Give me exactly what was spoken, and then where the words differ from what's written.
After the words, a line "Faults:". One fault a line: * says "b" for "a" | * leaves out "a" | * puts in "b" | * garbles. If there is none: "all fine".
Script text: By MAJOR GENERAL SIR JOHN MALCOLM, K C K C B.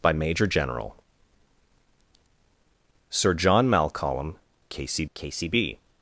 By MAJOR GENERAL SIR JOHN MALCOLM, K C K C B.
Faults:
all fine